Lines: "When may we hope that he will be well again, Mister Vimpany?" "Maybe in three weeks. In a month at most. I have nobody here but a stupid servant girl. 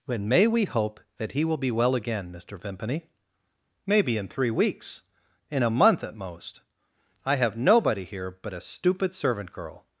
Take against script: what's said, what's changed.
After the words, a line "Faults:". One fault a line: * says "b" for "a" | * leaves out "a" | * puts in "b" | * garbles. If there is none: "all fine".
"When may we hope that he will be well again, Mister Vimpany?" "Maybe in three weeks. In a month at most. I have nobody here but a stupid servant girl.
Faults:
all fine